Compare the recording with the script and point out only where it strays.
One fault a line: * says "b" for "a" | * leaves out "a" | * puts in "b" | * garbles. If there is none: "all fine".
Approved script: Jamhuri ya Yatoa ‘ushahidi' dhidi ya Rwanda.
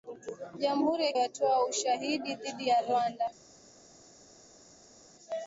all fine